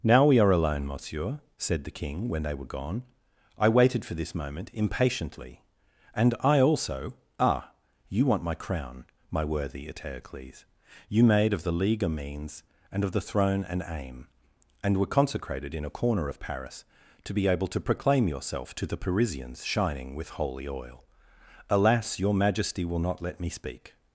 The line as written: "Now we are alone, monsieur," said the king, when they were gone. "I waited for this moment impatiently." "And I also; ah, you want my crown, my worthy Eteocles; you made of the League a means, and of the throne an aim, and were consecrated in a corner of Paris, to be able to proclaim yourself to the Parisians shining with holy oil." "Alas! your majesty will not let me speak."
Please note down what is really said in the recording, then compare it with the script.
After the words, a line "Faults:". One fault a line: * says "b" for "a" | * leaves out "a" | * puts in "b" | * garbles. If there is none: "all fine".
"Now we are alone, monsieur," said the king, when they were gone. "I waited for this moment impatiently." "And I also; ah, you want my crown, my worthy Eteocles; you made of the League a means, and of the throne an aim, and were consecrated in a corner of Paris, to be able to proclaim yourself to the Parisians shining with holy oil." "Alas! your majesty will not let me speak."
Faults:
all fine